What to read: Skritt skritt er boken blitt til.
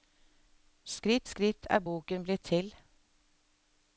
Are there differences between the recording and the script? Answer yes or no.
no